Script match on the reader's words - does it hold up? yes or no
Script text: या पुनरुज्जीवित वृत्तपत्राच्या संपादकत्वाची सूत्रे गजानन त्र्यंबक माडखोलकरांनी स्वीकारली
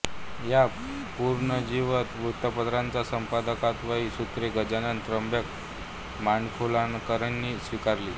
yes